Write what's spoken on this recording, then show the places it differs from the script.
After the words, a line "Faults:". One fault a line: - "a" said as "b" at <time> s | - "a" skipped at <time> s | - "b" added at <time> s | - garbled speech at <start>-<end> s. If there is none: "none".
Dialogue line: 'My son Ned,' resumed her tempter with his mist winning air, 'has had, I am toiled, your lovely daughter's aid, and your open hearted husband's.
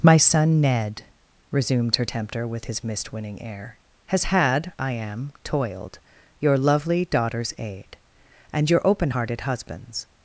'My son Ned,' resumed her tempter with his mist winning air, 'has had, I am toiled, your lovely daughter's aid, and your open hearted husband's.
Faults:
none